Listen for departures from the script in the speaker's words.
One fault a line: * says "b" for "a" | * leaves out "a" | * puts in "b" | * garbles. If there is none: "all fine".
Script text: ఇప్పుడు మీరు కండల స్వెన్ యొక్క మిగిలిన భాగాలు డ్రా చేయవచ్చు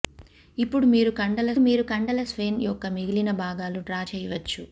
* puts in "మీరు కండల"